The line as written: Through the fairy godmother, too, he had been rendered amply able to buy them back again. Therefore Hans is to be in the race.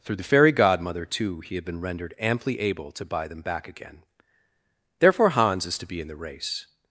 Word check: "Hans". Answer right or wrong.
right